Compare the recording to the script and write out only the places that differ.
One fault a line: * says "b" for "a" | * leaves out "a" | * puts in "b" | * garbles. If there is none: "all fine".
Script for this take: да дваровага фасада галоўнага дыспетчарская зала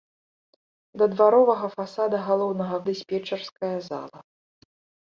all fine